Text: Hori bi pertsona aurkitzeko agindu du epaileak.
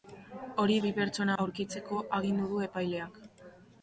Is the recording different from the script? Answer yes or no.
no